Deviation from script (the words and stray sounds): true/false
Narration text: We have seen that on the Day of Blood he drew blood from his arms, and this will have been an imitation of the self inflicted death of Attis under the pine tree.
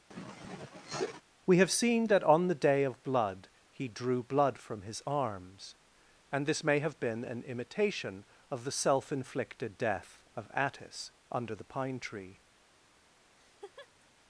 true